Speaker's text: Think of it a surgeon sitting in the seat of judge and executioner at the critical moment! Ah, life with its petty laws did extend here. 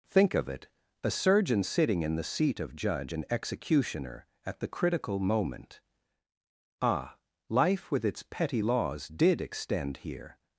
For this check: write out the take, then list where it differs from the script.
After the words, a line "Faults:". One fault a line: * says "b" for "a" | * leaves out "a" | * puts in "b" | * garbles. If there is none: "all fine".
Think of it a surgeon sitting in the seat of judge and executioner at the critical moment! Ah, life with its petty laws did extend here.
Faults:
all fine